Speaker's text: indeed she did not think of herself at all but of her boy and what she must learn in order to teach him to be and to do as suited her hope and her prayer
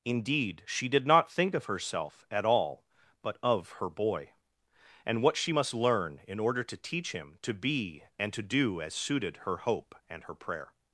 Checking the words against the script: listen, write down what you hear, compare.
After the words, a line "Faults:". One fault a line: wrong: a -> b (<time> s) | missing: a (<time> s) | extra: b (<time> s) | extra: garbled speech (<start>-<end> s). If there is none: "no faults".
indeed she did not think of herself at all but of her boy and what she must learn in order to teach him to be and to do as suited her hope and her prayer
Faults:
no faults